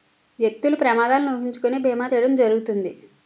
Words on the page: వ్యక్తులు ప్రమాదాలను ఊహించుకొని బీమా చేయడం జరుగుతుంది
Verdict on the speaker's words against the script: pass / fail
pass